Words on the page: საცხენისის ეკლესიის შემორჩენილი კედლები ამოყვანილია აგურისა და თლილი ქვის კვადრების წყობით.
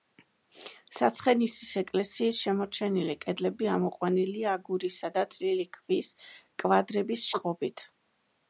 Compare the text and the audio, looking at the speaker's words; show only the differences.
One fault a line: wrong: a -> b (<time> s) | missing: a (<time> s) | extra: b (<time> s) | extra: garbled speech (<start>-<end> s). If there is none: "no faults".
no faults